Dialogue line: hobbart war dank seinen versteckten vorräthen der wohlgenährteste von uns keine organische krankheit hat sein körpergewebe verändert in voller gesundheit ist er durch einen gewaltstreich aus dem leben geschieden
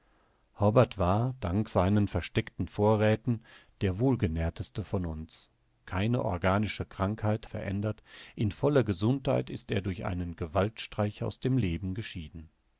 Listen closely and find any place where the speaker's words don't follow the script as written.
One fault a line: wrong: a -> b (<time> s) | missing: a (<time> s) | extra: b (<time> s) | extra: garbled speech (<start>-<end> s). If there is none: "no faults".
missing: hat sein körpergewebe (7.5 s)